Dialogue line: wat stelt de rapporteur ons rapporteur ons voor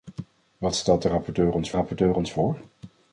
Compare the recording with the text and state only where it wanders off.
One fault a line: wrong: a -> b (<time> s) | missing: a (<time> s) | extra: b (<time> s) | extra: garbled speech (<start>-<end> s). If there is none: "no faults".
no faults